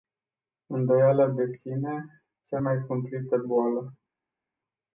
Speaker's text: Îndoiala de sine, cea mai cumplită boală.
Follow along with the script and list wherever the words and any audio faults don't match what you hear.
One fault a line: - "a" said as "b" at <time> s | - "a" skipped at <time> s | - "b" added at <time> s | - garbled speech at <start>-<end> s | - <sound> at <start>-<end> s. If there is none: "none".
none